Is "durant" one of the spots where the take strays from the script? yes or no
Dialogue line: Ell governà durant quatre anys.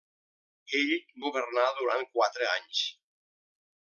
no